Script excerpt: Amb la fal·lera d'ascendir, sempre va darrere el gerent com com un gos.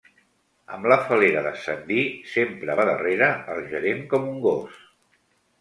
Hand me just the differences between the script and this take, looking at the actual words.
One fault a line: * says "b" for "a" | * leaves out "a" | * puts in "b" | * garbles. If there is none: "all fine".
* leaves out "com"